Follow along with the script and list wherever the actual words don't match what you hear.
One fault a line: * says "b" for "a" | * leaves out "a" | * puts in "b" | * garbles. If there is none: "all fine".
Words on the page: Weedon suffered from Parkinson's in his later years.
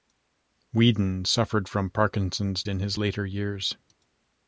all fine